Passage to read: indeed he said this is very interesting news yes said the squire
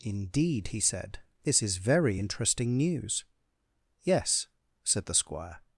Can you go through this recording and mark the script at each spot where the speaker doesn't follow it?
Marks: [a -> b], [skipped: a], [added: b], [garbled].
indeed he said this is very interesting news yes said the squire